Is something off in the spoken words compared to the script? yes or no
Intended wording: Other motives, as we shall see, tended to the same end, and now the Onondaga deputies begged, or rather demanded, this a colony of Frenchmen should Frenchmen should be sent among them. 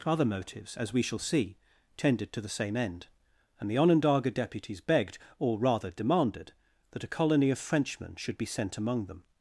yes